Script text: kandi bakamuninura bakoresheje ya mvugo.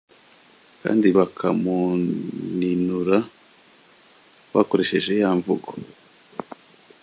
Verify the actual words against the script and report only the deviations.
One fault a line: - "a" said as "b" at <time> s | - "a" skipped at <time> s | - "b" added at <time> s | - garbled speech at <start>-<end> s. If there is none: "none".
none